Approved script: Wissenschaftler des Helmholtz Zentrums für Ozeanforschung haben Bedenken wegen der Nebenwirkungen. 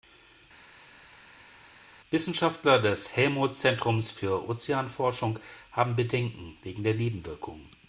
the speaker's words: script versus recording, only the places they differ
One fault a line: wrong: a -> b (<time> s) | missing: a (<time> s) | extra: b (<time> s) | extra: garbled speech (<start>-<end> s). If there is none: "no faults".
no faults